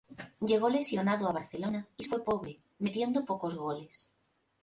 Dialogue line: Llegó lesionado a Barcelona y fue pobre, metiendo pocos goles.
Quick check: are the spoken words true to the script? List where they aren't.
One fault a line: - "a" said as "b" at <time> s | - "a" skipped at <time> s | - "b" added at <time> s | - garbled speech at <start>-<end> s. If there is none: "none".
none